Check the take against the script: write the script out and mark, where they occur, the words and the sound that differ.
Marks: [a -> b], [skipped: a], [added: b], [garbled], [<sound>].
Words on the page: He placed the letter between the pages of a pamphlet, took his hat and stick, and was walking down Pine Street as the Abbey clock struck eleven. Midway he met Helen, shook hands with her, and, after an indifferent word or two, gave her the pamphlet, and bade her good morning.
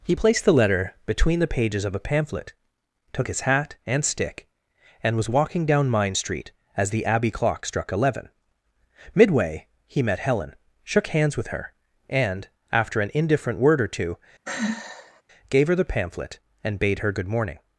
He placed the letter between the pages of a pamphlet, took his hat and stick, and was walking down [Pine -> Mine] Street as the Abbey clock struck eleven. Midway he met Helen, shook hands with her, and, after an indifferent word or two, [sigh] gave her the pamphlet, and bade her good morning.